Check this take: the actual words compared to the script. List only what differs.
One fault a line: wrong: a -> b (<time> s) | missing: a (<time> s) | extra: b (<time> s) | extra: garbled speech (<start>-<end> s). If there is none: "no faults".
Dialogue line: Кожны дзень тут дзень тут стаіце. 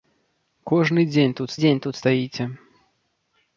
no faults